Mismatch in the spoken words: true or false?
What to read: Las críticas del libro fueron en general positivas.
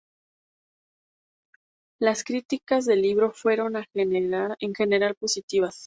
false